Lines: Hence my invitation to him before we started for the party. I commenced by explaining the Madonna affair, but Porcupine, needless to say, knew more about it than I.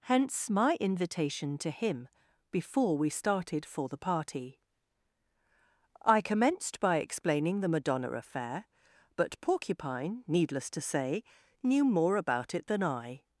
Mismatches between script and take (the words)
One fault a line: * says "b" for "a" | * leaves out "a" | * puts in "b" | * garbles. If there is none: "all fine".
all fine